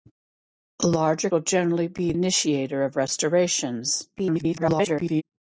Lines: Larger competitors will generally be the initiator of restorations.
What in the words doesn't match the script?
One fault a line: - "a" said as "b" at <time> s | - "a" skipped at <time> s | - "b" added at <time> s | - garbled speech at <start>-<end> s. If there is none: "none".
- "competitors" skipped at 1.3 s
- "the" skipped at 2.1 s
- garbled speech at 4.2-5.2 s